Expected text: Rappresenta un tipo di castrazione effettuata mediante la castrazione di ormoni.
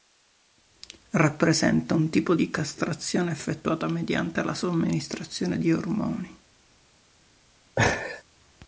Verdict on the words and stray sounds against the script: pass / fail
fail